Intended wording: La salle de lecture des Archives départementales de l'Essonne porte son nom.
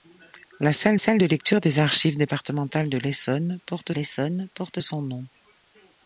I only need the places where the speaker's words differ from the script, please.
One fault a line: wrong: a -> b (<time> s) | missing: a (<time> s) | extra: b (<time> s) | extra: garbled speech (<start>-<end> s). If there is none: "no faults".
extra: salle (1.0 s)
extra: l'Essonne porte (3.9 s)